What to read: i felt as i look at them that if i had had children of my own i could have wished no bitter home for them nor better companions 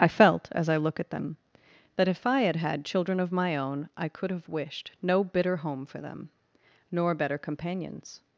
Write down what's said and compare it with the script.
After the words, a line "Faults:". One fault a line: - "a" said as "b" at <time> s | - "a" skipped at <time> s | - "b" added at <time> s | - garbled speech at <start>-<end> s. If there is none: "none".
i felt as i look at them that if i had had children of my own i could have wished no bitter home for them nor better companions
Faults:
none